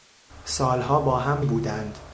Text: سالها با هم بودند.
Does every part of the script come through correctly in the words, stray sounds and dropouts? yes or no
yes